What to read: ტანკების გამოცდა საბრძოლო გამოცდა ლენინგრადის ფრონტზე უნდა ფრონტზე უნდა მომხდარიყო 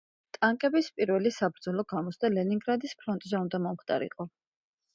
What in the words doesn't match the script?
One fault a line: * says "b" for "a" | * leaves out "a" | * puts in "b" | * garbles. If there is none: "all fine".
* says "პირველი" for "გამოცდა"
* leaves out "ფრონტზე უნდა"